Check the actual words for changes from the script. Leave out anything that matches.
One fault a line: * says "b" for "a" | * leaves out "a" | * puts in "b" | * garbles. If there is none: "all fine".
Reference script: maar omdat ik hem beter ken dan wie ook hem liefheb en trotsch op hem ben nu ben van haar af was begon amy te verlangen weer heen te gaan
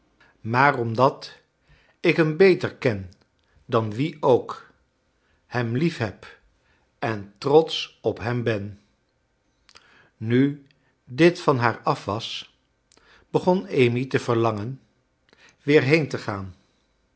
* says "dit" for "ben"